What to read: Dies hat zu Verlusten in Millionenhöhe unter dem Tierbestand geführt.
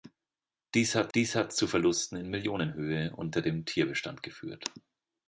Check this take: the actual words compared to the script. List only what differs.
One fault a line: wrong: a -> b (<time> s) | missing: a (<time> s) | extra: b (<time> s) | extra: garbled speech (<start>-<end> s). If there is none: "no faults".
extra: dies hat (1.1 s)